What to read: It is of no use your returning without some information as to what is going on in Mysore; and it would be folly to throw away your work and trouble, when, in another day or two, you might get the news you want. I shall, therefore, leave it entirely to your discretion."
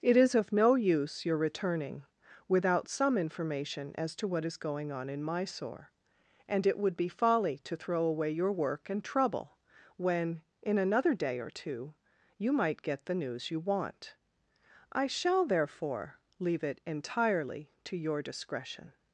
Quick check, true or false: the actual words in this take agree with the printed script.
true